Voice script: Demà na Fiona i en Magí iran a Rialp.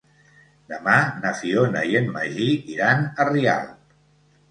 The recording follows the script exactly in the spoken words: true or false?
true